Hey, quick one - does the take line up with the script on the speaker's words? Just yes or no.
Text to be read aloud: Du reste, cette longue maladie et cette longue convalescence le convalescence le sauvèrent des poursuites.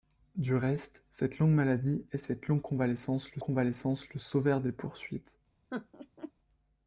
yes